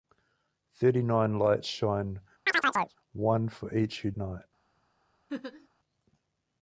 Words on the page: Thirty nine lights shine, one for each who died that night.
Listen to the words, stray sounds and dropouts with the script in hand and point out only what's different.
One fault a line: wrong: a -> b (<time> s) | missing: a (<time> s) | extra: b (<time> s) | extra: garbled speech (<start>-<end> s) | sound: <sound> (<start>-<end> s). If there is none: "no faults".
sound: chirp (2.5-3.0 s)
missing: died that (4.1 s)
sound: laugh (5.3-5.7 s)